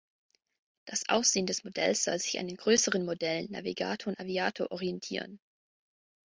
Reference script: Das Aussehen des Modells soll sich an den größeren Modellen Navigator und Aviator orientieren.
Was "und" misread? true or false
false